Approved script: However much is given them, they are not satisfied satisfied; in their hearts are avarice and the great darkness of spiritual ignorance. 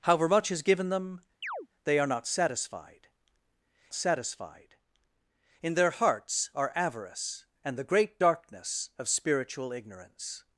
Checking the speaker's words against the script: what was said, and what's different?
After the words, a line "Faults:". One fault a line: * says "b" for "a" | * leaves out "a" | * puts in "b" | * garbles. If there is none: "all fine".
However much is given them, they are not satisfied satisfied; in their hearts are avarice and the great darkness of spiritual ignorance.
Faults:
all fine